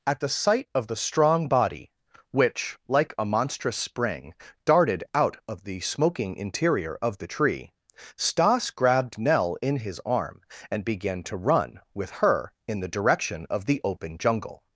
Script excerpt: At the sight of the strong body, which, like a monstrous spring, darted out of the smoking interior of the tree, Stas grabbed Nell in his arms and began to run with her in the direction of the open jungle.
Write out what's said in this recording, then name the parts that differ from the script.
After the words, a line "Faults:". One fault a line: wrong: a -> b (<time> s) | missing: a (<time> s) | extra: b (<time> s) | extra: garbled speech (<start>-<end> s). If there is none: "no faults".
At the sight of the strong body, which, like a monstrous spring, darted out of the smoking interior of the tree, Stas grabbed Nell in his arm and began to run with her in the direction of the open jungle.
Faults:
wrong: arms -> arm (10.1 s)